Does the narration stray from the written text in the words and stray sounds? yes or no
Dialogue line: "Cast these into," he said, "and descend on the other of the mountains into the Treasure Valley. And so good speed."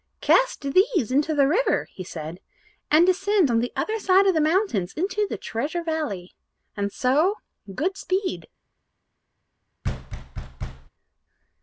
yes